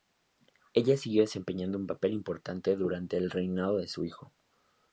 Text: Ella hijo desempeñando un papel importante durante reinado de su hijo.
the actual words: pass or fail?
fail